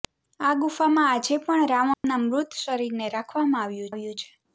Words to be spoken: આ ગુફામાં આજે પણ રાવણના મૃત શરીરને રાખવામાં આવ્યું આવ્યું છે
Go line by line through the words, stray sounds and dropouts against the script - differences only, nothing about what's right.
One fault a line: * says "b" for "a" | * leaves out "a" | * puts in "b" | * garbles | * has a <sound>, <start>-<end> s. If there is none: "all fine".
* has a dropout, 1.9-2.0 s